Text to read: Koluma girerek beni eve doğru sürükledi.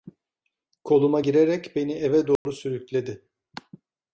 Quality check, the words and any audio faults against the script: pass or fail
fail